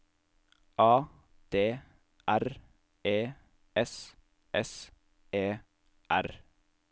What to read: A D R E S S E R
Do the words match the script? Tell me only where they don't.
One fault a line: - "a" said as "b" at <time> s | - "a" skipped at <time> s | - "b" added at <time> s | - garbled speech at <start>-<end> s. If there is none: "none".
none